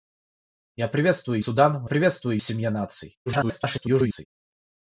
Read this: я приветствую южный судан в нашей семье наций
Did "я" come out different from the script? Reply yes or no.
no